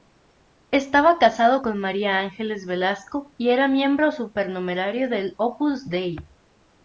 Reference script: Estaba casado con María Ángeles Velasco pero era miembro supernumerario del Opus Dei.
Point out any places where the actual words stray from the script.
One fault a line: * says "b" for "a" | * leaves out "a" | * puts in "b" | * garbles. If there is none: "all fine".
* says "y" for "pero"